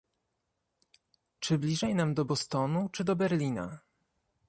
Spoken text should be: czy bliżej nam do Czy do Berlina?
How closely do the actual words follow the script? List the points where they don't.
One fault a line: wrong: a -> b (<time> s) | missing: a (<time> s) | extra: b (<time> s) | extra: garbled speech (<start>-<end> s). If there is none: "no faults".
extra: Bostonu (2.2 s)